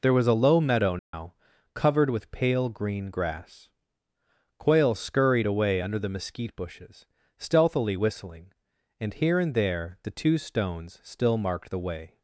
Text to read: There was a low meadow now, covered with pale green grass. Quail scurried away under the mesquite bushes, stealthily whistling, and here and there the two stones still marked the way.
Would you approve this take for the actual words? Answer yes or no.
yes